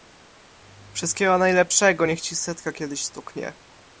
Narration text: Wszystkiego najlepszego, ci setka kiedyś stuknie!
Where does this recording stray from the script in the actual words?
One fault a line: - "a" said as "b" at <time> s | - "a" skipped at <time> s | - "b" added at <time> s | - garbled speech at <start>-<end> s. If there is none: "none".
- "niech" added at 2.0 s